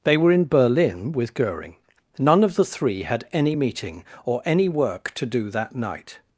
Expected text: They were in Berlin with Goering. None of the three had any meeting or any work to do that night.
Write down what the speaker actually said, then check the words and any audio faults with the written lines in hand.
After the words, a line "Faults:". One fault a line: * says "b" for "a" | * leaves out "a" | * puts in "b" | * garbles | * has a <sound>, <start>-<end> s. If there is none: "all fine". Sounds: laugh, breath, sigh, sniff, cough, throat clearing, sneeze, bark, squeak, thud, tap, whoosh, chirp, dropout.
They were in Berlin with Goering. None of the three had any meeting or any work to do that night.
Faults:
all fine